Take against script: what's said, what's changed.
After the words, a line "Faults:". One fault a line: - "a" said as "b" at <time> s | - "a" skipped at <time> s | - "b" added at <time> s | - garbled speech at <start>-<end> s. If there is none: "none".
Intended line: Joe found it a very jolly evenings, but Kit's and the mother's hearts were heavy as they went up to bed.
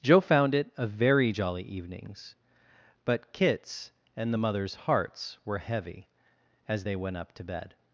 Joe found it a very jolly evenings, but Kit's and the mother's hearts were heavy as they went up to bed.
Faults:
none